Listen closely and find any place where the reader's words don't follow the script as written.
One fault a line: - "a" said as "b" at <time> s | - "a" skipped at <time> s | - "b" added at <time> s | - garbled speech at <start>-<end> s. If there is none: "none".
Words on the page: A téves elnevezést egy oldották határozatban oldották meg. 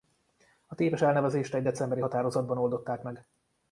- "oldották" said as "decemberi" at 1.6 s